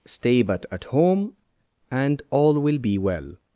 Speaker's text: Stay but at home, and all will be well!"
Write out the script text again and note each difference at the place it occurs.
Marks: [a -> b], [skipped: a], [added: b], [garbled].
Stay but at home, and all will be well!"